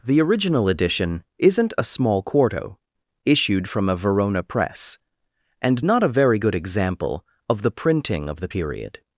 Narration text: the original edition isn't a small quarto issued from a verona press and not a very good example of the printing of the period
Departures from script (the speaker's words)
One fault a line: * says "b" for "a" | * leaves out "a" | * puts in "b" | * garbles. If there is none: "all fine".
all fine